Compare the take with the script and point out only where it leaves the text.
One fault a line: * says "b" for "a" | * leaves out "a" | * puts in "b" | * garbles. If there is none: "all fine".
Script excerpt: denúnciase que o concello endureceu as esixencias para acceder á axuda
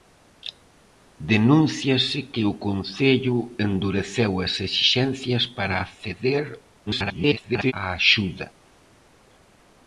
* garbles